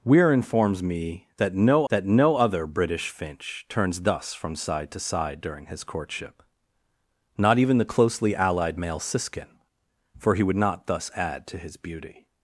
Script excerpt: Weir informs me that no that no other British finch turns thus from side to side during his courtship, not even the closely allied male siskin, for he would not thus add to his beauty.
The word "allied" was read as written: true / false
true